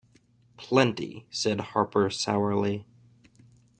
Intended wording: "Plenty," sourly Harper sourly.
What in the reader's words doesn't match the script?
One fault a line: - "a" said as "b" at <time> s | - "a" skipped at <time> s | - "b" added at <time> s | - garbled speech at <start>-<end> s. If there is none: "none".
- "sourly" said as "said" at 1.3 s